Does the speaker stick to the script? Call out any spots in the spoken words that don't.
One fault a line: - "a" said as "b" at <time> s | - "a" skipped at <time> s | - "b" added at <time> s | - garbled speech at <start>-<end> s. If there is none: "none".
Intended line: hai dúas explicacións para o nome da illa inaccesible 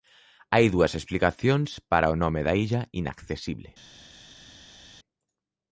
none